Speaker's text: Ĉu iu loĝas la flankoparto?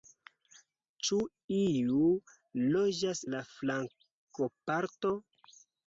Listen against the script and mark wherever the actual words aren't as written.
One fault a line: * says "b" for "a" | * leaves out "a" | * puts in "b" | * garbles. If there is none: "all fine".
all fine